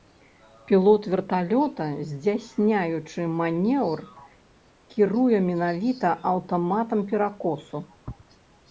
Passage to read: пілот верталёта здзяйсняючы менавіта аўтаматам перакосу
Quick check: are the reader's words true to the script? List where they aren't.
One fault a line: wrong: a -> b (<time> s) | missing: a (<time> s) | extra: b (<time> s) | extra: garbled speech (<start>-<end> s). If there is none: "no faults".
extra: манеўр кіруе (3.4 s)